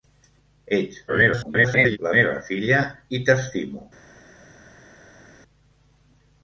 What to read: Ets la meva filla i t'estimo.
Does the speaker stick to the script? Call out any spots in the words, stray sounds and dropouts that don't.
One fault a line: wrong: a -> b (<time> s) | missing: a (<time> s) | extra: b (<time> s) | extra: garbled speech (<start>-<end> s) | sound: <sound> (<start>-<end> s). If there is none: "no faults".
extra: garbled speech (1.1-2.0 s)